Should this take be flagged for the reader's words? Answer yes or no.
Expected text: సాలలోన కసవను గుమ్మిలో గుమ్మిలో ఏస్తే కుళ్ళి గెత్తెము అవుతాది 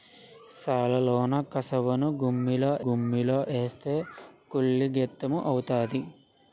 no